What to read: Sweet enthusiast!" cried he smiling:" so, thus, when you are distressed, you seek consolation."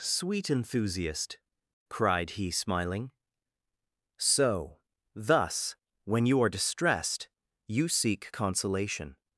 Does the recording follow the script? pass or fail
pass